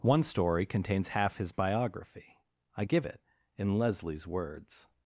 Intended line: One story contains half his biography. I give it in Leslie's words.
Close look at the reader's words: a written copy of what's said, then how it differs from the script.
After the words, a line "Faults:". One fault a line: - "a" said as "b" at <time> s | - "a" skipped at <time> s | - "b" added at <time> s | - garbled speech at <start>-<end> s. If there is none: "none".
One story contains half his biography. I give it in Leslie's words.
Faults:
none